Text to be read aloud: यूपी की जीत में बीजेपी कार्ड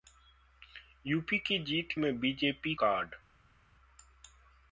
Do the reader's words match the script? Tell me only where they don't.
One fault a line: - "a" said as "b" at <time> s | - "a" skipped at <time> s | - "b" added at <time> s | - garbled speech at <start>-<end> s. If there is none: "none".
none